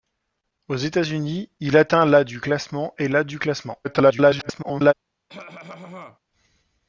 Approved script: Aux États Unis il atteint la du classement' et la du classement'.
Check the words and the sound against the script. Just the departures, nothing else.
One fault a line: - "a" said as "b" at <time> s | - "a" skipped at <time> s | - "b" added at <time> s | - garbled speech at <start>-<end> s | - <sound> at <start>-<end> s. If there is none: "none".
- garbled speech at 3.8-4.9 s
- cough at 5.3-6.2 s